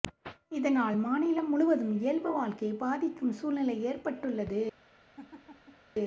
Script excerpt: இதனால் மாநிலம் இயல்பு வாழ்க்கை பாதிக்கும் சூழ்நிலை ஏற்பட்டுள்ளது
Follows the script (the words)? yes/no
no